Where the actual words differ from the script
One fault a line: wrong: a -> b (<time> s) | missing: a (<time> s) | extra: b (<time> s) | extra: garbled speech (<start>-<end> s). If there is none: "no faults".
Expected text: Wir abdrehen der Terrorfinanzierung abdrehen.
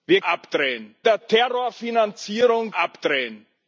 no faults